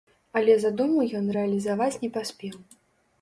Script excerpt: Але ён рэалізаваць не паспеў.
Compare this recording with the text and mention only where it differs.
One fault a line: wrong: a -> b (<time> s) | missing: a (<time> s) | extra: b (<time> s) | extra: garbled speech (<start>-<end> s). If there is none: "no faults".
extra: задуму (0.6 s)